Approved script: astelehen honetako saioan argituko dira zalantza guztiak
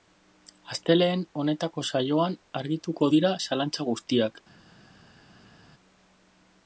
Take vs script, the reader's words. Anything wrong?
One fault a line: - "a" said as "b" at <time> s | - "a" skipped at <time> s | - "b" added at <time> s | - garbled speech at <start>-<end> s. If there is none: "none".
none